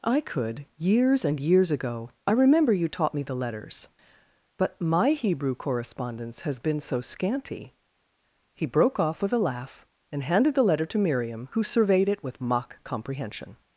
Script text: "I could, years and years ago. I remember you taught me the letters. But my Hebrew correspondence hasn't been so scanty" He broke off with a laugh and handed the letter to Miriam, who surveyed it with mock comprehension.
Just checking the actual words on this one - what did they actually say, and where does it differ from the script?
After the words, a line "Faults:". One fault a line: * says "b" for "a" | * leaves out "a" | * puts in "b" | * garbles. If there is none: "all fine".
"I could, years and years ago. I remember you taught me the letters. But my Hebrew correspondence has been so scanty" He broke off with a laugh and handed the letter to Miriam, who surveyed it with mock comprehension.
Faults:
* says "has" for "hasn't"